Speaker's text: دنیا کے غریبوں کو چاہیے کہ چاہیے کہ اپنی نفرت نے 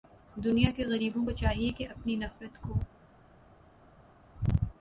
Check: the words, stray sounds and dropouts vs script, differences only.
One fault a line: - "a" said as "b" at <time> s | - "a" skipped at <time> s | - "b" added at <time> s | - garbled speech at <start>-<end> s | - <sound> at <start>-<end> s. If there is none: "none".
- "چاہیے کہ" skipped at 1.9 s
- "نے" said as "کو" at 2.6 s